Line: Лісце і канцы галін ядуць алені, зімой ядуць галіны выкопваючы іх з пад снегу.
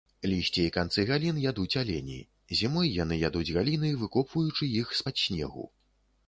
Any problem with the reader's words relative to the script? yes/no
yes